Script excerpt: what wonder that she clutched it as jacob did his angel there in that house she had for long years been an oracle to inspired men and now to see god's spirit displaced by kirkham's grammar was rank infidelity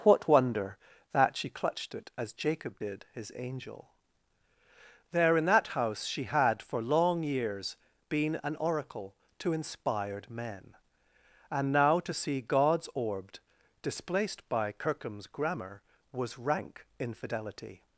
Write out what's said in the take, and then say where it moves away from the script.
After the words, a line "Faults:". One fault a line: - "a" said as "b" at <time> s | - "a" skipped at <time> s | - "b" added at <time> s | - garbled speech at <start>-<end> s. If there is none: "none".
what wonder that she clutched it as jacob did his angel there in that house she had for long years been an oracle to inspired men and now to see god's orbed displaced by kirkham's grammar was rank infidelity
Faults:
- "spirit" said as "orbed" at 12.9 s